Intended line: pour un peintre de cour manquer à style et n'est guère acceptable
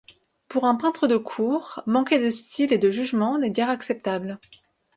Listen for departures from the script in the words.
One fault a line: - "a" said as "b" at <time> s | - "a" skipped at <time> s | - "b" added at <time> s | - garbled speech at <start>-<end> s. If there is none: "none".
- "à" said as "de" at 2.2 s
- "de jugement" added at 2.8 s